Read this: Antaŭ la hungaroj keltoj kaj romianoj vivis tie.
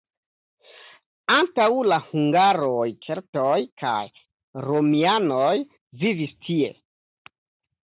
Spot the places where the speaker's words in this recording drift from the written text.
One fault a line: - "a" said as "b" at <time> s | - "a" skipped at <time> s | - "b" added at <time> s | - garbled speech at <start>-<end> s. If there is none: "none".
none